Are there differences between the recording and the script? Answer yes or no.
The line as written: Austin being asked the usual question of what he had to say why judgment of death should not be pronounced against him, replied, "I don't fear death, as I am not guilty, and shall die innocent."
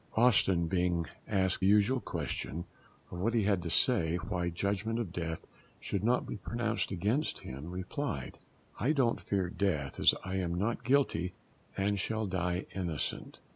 yes